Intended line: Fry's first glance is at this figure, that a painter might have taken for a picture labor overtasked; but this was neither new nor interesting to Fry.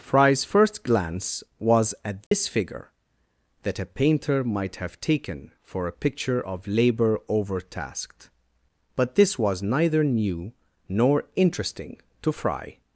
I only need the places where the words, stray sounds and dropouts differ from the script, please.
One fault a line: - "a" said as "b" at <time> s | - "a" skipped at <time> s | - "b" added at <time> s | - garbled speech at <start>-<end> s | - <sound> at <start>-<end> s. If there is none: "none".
- "is" said as "was" at 1.6 s
- dropout at 2.3-2.3 s
- "of" added at 6.5 s